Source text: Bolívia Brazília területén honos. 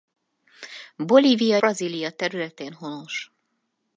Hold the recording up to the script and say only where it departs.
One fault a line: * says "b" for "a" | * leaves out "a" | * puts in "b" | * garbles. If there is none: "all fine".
all fine